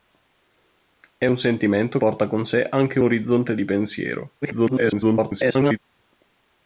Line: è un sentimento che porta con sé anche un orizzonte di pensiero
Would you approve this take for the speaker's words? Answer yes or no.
no